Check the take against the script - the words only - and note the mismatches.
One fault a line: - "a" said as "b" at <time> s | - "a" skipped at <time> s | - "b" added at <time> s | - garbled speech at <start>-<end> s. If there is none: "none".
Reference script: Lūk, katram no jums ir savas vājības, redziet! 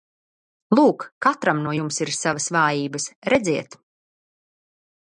none